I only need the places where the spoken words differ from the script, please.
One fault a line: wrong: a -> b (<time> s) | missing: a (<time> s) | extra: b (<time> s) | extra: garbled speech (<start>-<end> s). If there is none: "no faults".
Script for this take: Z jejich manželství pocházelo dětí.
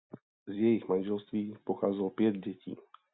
extra: pět (2.1 s)